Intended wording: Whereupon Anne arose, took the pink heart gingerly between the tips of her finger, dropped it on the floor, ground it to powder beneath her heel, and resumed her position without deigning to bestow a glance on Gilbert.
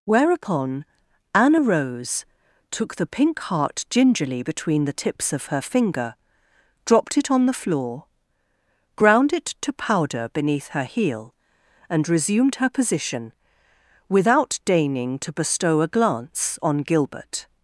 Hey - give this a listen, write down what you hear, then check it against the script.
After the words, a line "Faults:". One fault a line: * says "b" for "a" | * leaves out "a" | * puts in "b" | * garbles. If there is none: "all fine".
Whereupon Anne arose, took the pink heart gingerly between the tips of her finger, dropped it on the floor, ground it to powder beneath her heel, and resumed her position without deigning to bestow a glance on Gilbert.
Faults:
all fine